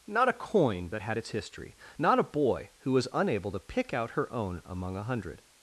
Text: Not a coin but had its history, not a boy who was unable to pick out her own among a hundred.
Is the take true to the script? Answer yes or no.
yes